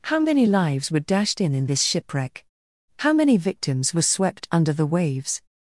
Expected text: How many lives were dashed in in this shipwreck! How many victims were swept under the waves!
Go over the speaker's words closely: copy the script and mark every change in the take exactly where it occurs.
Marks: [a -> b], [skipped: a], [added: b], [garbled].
How many lives were dashed in in this shipwreck! How many victims were swept under the waves!